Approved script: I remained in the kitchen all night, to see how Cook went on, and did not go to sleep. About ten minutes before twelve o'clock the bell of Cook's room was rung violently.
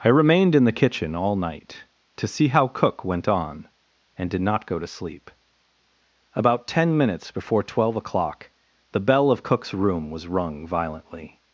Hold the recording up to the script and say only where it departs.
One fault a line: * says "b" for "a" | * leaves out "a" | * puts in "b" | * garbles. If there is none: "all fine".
all fine